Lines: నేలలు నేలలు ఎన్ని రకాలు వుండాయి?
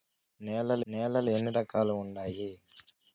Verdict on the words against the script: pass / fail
pass